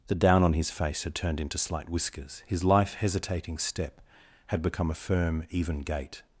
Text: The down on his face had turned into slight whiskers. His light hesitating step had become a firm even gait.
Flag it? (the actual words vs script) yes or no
yes